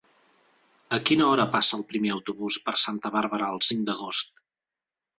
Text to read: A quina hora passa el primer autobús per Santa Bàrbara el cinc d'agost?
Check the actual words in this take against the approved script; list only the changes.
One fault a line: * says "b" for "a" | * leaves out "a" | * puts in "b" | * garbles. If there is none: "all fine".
all fine